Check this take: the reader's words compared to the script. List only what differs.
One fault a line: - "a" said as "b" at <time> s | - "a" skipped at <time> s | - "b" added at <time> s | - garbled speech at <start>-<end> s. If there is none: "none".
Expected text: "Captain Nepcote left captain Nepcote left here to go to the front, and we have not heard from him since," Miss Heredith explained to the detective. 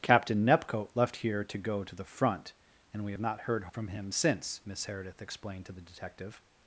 - "captain Nepcote left" skipped at 1.2 s